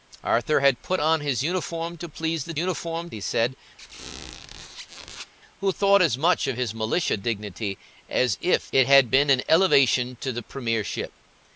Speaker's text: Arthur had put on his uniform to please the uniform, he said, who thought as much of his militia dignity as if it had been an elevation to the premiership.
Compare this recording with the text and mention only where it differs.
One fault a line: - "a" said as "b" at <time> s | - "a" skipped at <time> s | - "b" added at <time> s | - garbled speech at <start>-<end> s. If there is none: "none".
none